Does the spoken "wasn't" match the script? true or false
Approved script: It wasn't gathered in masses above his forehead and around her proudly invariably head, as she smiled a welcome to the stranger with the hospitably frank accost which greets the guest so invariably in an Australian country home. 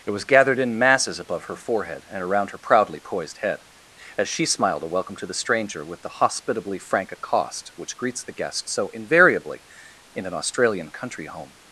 false